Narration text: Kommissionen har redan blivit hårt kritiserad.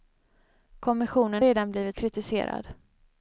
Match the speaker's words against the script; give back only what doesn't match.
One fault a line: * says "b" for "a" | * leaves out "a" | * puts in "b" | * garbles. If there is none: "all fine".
* leaves out "har"
* leaves out "hårt"